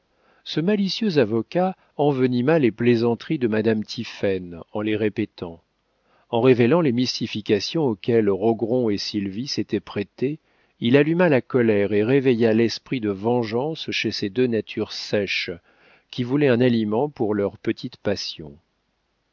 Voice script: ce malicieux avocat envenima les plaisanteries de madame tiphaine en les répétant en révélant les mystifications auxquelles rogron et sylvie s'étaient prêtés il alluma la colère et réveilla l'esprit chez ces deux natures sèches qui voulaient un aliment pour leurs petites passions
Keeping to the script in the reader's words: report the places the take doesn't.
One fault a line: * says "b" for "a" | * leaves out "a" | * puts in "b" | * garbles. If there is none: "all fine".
* puts in "de vengeance"